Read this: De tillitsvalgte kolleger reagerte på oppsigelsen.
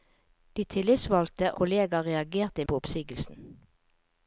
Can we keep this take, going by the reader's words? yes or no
yes